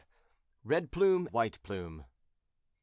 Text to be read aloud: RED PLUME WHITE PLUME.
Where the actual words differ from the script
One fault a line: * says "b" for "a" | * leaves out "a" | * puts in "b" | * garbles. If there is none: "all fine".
all fine